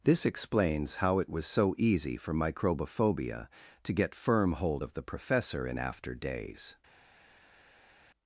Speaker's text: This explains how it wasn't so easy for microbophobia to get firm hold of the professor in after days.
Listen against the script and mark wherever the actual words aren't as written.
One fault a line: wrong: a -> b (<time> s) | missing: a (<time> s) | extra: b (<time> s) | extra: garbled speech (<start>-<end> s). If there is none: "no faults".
wrong: wasn't -> was (1.3 s)